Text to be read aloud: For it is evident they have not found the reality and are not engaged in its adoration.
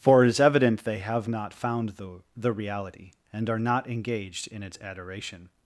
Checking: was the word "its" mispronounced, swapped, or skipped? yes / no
no